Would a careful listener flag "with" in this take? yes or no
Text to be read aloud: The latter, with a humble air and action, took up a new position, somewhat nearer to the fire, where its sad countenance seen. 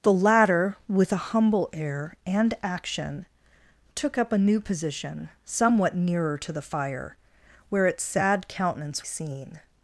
no